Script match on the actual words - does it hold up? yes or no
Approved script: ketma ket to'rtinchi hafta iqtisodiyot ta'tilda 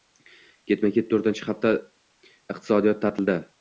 yes